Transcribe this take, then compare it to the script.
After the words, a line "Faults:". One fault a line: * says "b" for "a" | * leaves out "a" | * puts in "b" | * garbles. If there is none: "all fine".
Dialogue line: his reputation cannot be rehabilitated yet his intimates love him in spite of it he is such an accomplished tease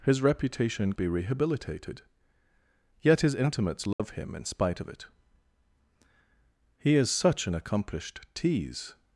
his reputation be rehabilitated yet his intimates love him in spite of it he is such an accomplished tease
Faults:
* leaves out "cannot"